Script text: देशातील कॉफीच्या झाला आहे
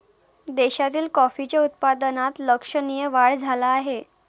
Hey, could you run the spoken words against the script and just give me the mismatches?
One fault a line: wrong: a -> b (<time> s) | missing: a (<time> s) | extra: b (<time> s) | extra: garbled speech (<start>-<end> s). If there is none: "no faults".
extra: उत्पादनात लक्षणीय वाढ (1.6 s)